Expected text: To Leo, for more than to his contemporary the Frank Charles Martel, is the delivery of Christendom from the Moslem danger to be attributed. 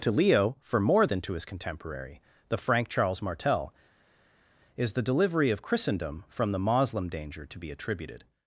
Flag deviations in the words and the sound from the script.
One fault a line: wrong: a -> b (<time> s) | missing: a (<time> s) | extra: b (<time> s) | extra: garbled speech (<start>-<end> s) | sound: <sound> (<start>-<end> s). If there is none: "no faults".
no faults